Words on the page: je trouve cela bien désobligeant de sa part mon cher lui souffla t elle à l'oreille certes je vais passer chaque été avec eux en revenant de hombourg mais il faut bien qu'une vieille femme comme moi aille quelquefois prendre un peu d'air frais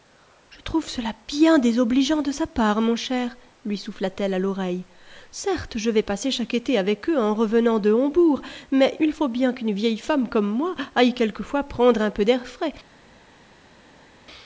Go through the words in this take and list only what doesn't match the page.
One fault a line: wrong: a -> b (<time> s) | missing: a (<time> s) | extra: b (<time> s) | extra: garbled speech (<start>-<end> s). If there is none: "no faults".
no faults